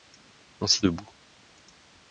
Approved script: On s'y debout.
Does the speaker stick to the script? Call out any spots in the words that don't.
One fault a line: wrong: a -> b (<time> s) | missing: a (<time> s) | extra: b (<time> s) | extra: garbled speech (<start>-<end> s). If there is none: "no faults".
no faults